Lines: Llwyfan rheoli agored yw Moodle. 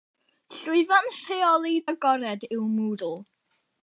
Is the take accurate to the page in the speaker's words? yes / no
yes